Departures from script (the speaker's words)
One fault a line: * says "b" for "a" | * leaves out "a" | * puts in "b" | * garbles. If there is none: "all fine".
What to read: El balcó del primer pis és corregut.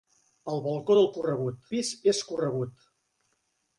* says "corregut" for "primer"